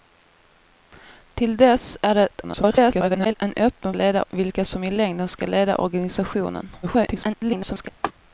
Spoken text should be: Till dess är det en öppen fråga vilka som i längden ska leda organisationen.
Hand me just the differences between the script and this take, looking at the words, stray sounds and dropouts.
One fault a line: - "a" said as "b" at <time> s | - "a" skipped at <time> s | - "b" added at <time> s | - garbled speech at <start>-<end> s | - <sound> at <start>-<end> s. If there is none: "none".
- garbled speech at 2.4-3.3 s
- "fråga" said as "leda" at 3.9 s
- garbled speech at 6.8-7.9 s
- laugh at 8.0-8.1 s